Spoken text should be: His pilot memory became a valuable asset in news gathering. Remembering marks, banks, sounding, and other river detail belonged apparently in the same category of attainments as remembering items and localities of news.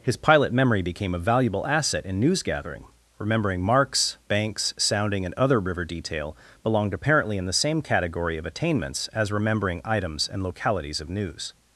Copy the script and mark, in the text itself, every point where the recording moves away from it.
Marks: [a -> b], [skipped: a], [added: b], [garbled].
His pilot memory became a valuable asset in news gathering. Remembering marks, banks, sounding, and other river detail belonged apparently in the same category of attainments as remembering items and localities of news.